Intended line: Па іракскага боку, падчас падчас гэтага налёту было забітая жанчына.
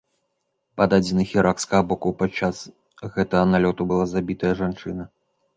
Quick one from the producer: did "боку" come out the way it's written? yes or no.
yes